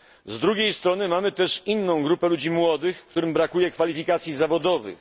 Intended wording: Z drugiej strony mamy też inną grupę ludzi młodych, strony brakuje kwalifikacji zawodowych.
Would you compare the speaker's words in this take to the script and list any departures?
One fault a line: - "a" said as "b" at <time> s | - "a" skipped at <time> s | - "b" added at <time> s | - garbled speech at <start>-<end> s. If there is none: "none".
- "strony" said as "którym" at 3.1 s